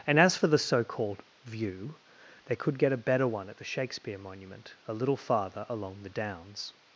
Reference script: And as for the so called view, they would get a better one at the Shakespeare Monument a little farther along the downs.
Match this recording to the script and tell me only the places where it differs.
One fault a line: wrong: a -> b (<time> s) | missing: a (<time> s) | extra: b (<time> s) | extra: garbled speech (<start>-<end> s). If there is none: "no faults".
wrong: would -> could (2.5 s)